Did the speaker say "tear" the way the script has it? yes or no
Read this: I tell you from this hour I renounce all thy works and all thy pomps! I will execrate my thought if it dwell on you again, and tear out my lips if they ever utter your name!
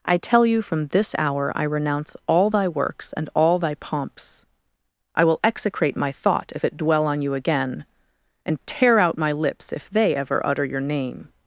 yes